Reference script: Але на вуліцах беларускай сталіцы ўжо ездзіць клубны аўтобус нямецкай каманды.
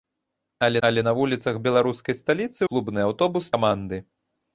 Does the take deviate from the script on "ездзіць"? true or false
true